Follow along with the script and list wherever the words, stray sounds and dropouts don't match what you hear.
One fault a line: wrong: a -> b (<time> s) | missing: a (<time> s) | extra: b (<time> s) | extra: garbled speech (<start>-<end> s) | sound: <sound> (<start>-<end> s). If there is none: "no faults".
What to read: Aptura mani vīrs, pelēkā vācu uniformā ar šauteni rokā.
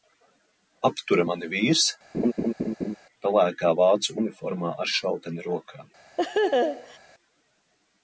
sound: laugh (2.1-3.0 s)
sound: laugh (6.2-7.0 s)